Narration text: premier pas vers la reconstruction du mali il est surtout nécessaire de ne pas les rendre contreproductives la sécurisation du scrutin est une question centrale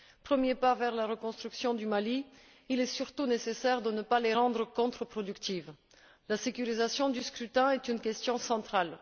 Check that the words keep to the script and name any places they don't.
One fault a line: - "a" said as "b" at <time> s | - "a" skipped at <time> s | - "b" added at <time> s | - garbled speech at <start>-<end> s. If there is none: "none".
none